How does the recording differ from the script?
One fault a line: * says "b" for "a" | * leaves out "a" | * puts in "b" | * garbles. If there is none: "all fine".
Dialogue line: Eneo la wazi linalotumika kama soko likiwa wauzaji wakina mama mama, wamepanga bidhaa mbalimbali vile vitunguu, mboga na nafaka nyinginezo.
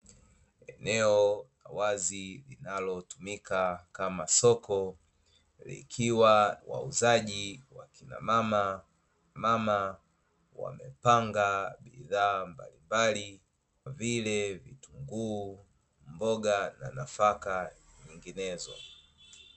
all fine